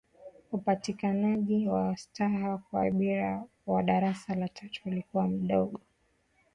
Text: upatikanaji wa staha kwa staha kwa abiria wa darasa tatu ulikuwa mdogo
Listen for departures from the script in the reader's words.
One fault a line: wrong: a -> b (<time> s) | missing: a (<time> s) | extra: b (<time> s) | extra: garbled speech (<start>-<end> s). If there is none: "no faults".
missing: staha kwa (2.8 s)
extra: la (4.3 s)